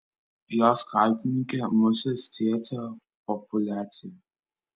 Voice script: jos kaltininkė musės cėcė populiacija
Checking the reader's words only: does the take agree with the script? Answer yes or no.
yes